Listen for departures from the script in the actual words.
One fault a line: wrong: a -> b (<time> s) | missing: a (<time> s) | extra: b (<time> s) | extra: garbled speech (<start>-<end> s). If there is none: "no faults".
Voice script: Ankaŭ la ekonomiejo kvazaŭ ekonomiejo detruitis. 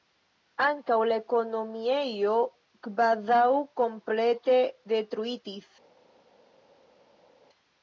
wrong: ekonomiejo -> komplete (3.8 s)